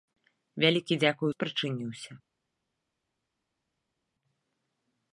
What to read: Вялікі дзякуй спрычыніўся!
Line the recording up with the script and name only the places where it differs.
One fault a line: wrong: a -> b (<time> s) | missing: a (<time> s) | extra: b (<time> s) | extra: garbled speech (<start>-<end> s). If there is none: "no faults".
no faults